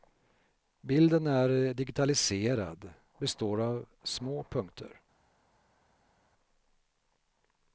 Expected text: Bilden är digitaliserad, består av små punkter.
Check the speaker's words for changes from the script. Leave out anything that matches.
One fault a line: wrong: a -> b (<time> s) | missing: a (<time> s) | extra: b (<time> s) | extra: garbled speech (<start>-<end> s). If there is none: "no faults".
no faults